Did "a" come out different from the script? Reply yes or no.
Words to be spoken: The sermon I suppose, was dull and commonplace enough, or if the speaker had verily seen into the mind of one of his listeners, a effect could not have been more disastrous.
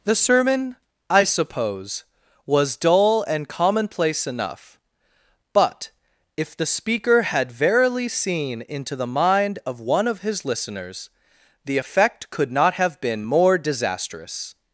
yes